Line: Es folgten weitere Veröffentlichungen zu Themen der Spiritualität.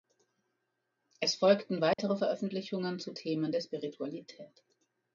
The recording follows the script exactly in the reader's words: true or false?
true